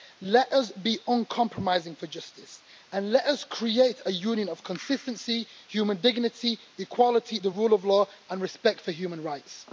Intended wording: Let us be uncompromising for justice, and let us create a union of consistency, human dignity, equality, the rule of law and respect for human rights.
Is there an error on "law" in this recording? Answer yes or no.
no